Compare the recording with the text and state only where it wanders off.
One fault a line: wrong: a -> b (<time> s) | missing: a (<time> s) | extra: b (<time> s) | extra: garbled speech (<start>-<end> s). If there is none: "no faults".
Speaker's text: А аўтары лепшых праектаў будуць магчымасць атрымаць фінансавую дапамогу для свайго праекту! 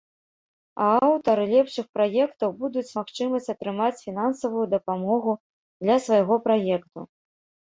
no faults